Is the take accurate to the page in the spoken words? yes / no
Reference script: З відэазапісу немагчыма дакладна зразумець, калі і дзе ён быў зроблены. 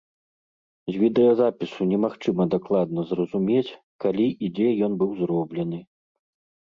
yes